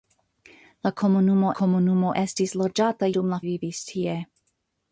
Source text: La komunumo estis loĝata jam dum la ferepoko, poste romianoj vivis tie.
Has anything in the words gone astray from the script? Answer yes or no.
yes